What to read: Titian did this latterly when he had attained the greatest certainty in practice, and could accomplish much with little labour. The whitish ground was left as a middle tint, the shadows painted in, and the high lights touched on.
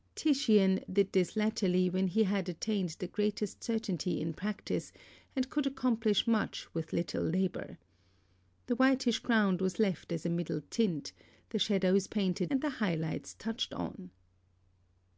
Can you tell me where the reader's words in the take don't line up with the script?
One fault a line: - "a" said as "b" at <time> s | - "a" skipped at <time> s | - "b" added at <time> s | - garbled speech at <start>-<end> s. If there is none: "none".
- "in" skipped at 12.5 s